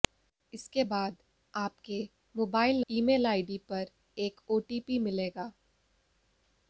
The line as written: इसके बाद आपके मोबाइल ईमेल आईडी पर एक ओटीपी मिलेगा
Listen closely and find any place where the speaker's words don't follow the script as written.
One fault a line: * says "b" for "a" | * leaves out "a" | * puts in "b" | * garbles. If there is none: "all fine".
all fine